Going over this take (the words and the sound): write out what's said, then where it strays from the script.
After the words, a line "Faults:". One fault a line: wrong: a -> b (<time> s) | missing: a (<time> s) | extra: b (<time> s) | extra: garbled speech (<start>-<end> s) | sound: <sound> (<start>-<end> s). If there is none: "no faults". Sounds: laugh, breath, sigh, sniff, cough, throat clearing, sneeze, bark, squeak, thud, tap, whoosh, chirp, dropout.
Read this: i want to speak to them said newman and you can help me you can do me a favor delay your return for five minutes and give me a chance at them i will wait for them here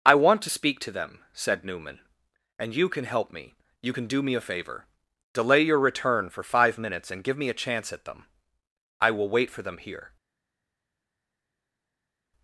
i want to speak to them said newman and you can help me you can do me a favor delay your return for five minutes and give me a chance at them i will wait for them here
Faults:
no faults